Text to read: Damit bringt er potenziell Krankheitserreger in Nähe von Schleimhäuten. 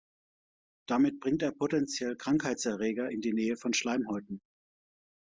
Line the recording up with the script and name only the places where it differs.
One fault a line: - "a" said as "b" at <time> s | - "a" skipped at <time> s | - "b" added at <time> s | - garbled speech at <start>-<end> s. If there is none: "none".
- "die" added at 3.2 s